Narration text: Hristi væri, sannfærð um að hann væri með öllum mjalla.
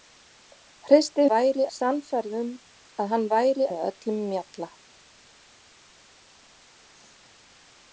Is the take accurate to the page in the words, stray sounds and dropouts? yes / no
yes